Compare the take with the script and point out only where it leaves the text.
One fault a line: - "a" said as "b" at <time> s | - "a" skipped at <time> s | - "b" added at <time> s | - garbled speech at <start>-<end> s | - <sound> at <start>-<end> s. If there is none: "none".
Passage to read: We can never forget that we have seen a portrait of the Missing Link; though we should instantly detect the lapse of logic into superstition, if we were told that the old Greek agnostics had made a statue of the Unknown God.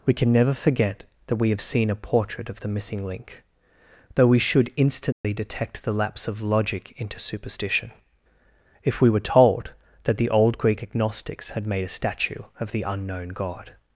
- dropout at 5.1-5.2 s